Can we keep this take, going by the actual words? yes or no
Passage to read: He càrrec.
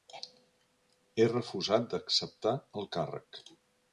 no